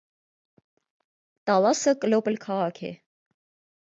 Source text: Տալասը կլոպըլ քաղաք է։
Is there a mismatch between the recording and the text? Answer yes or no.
no